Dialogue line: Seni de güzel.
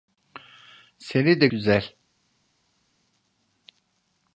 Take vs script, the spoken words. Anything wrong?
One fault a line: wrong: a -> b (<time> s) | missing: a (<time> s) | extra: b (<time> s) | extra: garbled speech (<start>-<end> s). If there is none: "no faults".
no faults